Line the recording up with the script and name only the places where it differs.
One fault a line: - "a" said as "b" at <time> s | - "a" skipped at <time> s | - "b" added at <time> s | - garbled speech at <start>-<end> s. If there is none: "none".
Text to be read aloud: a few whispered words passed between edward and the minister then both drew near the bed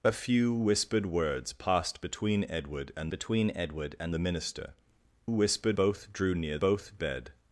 - "between edward and" added at 3.1 s
- "then" said as "whispered" at 5.3 s
- "the" said as "both" at 6.6 s